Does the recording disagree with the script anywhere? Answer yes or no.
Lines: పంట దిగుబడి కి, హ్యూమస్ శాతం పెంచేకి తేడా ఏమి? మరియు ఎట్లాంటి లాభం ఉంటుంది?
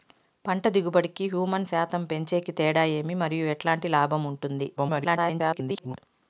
yes